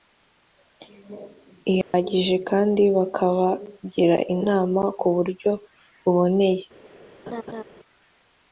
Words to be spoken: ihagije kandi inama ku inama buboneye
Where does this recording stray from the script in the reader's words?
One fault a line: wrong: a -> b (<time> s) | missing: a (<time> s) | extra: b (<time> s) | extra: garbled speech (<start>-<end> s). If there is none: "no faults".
extra: bakabagira (3.0 s)
wrong: inama -> buryo (5.2 s)